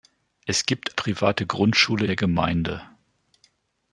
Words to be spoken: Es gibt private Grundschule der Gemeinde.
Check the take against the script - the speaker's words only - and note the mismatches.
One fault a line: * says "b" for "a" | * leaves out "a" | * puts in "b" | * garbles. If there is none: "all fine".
all fine